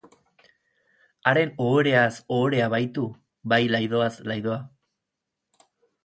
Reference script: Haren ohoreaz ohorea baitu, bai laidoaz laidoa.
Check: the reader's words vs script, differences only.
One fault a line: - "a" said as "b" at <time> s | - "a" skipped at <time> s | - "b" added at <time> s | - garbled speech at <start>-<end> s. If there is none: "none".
none